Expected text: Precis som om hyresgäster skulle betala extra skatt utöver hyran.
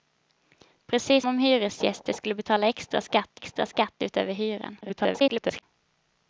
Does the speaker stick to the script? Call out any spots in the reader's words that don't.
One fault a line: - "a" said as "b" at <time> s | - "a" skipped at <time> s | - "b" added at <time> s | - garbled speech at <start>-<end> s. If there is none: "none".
- "som" skipped at 1.2 s
- "extra skatt" added at 3.3 s
- garbled speech at 4.8-5.6 s